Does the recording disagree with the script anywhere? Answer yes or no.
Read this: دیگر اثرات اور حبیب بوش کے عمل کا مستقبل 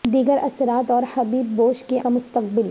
yes